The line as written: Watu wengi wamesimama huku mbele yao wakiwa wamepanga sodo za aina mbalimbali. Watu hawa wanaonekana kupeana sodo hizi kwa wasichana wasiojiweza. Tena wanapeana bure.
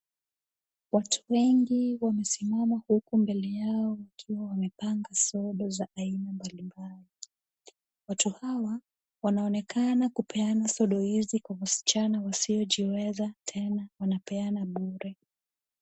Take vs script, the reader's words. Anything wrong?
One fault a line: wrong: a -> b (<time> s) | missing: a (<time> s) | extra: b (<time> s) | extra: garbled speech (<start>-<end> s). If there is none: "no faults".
no faults